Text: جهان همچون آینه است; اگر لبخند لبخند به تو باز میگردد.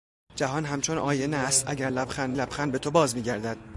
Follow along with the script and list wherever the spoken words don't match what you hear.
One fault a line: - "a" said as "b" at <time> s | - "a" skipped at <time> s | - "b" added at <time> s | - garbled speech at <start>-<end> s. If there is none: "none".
none